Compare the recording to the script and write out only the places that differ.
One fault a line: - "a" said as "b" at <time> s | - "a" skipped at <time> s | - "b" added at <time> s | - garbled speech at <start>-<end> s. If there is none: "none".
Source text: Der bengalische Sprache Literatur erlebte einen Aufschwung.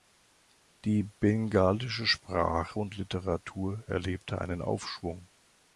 - "Der" said as "Die" at 0.8 s
- "und" added at 2.8 s